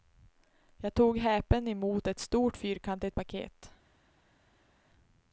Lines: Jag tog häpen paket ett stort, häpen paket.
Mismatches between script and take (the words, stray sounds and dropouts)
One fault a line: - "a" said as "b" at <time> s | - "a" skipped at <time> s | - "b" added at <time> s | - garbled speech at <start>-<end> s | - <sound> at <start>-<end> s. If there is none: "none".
- "paket" said as "emot" at 1.7 s
- "häpen" said as "fyrkantigt" at 2.6 s